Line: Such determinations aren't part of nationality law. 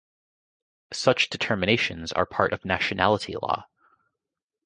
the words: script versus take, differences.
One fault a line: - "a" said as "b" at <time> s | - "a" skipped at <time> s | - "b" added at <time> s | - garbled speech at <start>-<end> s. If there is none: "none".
- "aren't" said as "are" at 2.1 s